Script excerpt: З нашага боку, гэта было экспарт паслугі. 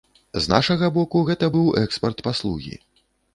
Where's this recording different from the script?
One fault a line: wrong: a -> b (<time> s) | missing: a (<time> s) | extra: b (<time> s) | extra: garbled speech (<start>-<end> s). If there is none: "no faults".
wrong: было -> быў (1.5 s)